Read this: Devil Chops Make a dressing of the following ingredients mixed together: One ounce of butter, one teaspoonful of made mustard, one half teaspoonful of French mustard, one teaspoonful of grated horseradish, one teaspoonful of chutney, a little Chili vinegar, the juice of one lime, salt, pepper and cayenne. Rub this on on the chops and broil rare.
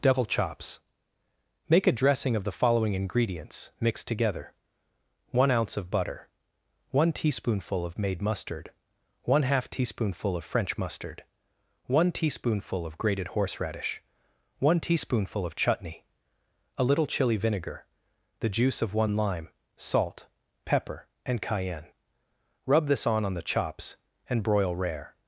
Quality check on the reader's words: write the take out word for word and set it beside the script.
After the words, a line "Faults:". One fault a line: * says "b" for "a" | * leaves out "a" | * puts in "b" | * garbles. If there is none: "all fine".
Devil Chops Make a dressing of the following ingredients mixed together: One ounce of butter, one teaspoonful of made mustard, one half teaspoonful of French mustard, one teaspoonful of grated horseradish, one teaspoonful of chutney, a little Chili vinegar, the juice of one lime, salt, pepper and cayenne. Rub this on on the chops and broil rare.
Faults:
all fine